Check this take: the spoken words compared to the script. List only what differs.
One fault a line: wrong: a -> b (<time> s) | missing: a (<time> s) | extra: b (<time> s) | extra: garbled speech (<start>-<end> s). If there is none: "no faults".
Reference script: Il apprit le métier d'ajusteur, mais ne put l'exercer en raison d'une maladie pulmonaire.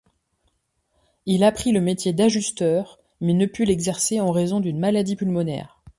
no faults